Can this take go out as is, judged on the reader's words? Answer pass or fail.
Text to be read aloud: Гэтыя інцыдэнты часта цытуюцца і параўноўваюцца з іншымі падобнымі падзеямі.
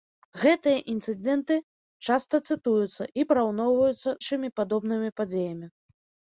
fail